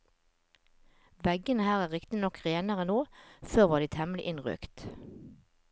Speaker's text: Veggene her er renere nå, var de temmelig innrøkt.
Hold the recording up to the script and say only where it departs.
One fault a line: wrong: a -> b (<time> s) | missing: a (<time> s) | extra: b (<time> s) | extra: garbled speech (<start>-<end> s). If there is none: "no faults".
extra: riktignok (1.9 s)
extra: før (3.5 s)